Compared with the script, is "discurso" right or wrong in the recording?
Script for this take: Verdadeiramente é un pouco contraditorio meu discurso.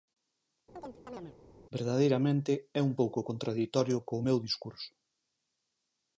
right